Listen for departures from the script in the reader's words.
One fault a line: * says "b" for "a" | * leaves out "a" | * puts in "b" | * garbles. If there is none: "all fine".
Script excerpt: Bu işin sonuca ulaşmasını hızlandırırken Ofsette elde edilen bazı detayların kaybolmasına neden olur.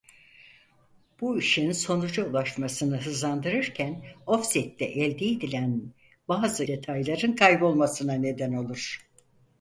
all fine